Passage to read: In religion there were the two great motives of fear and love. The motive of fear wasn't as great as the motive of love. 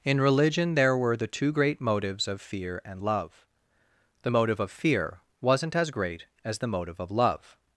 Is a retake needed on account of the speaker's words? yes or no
no